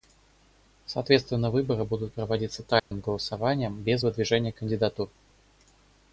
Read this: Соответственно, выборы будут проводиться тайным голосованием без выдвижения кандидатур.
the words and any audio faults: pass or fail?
fail